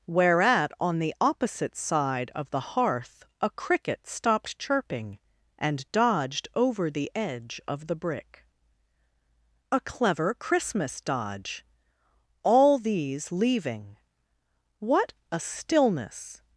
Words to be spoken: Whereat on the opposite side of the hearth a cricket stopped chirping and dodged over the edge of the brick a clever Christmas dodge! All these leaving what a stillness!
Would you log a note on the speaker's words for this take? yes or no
no